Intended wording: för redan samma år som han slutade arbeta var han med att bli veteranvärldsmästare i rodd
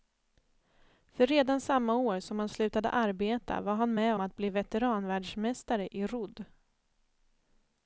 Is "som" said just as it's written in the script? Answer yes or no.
yes